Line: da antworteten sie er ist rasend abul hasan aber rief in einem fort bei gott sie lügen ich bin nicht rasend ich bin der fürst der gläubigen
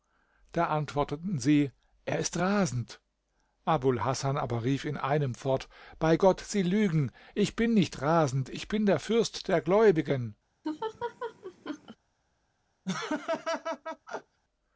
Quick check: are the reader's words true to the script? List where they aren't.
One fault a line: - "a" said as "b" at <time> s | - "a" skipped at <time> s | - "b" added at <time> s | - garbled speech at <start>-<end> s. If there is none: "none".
none